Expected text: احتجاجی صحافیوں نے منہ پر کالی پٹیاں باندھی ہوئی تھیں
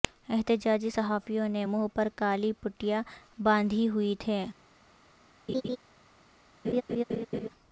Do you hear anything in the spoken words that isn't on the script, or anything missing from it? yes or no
no